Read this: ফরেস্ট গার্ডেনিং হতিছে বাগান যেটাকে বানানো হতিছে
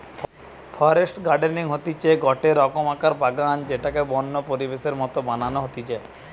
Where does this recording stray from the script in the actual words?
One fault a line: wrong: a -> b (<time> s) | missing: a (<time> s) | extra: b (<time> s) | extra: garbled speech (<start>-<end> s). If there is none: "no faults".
extra: গটে রকমকার (2.2 s)
extra: বন্য পরিবেশের মত (4.1 s)